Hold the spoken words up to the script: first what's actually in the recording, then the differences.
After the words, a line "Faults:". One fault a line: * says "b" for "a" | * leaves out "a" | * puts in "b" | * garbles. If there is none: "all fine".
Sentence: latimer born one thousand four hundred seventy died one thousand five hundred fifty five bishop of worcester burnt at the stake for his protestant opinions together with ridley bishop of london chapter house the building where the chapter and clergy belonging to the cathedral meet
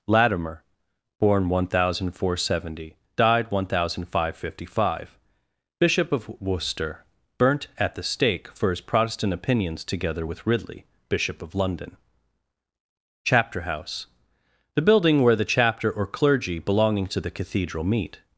latimer born one thousand four hundred seventy died one thousand five hundred fifty five bishop of worcester burnt at the stake for his protestant opinions together with ridley bishop of london chapter house the building where the chapter or clergy belonging to the cathedral meet
Faults:
* says "or" for "and"